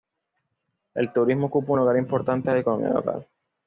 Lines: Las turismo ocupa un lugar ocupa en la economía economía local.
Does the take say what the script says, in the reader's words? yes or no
no